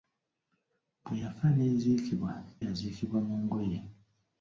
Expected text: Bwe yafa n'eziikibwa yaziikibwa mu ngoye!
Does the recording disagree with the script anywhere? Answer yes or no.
no